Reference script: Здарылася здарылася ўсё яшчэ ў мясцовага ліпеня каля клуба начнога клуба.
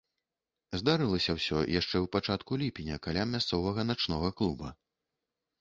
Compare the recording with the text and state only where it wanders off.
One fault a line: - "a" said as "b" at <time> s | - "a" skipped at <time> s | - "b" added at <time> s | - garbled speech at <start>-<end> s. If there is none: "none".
- "здарылася" skipped at 1.4 s
- "мясцовага" said as "пачатку" at 2.1 s
- "клуба" said as "мясцовага" at 3.4 s